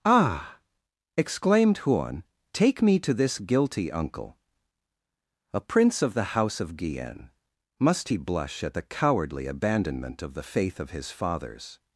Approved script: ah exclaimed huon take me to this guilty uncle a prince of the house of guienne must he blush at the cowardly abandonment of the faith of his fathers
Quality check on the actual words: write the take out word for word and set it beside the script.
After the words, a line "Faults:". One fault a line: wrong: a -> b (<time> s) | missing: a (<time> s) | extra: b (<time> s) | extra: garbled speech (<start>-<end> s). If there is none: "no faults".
ah exclaimed huon take me to this guilty uncle a prince of the house of guienne must he blush at the cowardly abandonment of the faith of his fathers
Faults:
no faults